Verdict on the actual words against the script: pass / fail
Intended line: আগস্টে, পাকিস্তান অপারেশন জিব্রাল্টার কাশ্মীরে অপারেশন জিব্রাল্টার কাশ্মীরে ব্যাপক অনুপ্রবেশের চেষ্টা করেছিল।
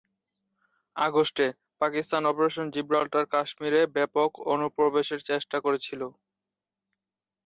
fail